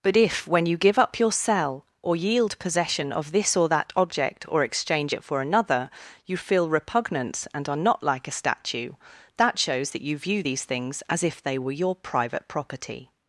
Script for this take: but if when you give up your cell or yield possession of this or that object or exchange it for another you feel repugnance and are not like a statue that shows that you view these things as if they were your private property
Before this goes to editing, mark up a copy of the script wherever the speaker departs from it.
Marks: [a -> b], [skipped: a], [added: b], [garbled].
but if when you give up your cell or yield possession of this or that object or exchange it for another you feel repugnance and are not like a statue that shows that you view these things as if they were your private property